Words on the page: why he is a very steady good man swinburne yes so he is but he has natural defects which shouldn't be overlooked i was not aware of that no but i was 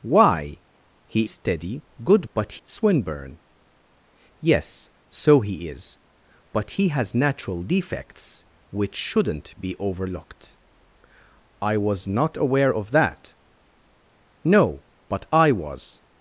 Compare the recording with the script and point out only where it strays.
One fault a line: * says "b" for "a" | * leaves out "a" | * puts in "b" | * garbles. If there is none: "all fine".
* leaves out "is a very"
* says "but" for "man"